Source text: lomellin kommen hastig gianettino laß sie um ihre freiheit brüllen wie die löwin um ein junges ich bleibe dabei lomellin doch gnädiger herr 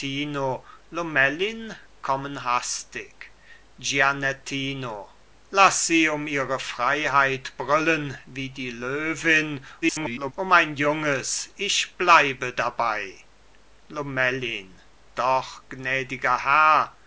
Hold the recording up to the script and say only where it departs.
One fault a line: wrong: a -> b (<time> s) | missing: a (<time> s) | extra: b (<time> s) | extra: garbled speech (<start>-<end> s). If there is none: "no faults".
extra: garbled speech (9.8-10.3 s)